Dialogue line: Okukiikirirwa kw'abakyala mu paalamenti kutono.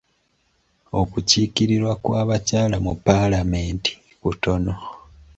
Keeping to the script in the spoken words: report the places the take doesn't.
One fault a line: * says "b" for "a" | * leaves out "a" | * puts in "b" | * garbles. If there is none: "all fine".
all fine